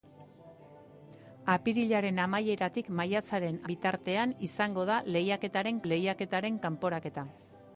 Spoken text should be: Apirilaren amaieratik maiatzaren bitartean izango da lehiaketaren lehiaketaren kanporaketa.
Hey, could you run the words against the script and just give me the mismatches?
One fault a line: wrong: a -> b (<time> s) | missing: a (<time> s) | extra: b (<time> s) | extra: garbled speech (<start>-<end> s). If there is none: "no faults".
no faults